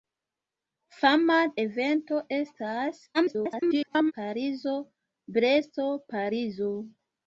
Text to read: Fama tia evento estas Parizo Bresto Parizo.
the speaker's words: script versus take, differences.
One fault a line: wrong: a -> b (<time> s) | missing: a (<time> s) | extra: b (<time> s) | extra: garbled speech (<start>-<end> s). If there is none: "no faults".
missing: tia (1.4 s)
extra: garbled speech (3.1-4.1 s)